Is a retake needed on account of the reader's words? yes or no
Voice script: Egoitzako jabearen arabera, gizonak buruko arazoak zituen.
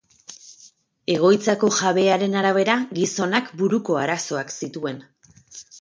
no